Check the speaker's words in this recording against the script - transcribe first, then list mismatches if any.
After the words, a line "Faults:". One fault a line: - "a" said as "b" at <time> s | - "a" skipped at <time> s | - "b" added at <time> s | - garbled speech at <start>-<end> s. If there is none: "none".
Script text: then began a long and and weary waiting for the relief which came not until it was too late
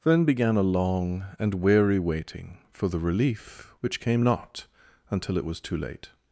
then began a long and weary waiting for the relief which came not until it was too late
Faults:
- "and" skipped at 1.6 s